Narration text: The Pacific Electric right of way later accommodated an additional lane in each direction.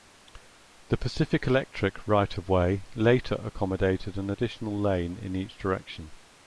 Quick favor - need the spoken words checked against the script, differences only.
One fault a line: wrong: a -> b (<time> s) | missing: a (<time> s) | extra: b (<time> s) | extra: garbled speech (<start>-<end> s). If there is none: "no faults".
no faults